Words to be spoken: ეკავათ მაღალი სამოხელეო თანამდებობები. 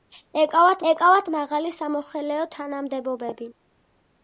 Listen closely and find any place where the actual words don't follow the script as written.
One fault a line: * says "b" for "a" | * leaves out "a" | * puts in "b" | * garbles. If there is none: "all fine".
* puts in "ეკავათ"